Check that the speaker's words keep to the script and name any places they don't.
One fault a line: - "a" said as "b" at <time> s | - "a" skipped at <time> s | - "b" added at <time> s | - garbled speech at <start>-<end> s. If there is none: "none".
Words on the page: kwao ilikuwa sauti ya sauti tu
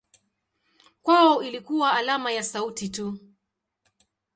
- "sauti" said as "alama" at 1.9 s